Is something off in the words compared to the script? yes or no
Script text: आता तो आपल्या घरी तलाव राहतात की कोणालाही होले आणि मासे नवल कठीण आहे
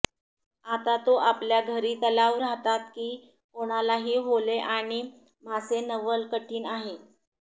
no